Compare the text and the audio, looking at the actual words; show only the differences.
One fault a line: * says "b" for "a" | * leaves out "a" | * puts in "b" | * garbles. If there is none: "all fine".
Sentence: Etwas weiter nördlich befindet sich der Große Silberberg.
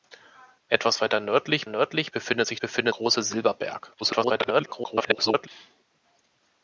* puts in "nördlich"
* says "befindet" for "der"
* garbles